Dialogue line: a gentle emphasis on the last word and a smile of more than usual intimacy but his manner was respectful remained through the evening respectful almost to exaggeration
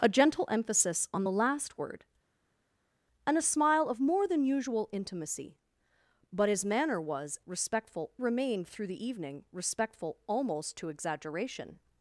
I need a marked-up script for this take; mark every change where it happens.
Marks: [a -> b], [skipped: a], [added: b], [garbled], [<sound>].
a gentle emphasis on the last word and a smile of more than usual intimacy but his manner was respectful remained through the evening respectful almost to exaggeration